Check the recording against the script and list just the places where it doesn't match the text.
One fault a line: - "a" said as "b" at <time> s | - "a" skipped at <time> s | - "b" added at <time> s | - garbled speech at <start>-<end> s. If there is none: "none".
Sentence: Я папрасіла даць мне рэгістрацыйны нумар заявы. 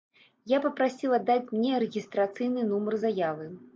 none